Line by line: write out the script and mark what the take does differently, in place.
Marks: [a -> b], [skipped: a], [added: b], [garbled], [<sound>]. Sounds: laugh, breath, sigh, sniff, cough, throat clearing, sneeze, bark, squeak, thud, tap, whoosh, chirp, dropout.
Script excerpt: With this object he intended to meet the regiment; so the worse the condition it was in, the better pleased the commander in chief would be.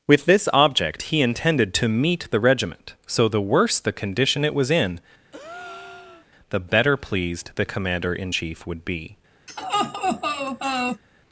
With this object he intended to meet the regiment; so the worse the condition it was in, [breath] the better pleased the commander in chief would be. [laugh]